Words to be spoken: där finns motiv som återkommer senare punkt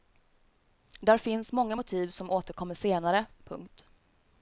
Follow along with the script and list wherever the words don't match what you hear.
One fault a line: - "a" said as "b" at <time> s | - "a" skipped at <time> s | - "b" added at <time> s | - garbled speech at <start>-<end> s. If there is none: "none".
- "många" added at 1.5 s